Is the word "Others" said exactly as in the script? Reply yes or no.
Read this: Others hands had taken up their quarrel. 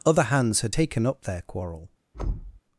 no